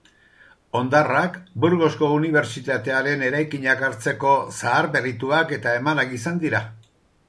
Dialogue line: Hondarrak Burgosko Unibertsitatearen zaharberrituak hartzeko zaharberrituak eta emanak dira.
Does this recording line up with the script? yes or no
no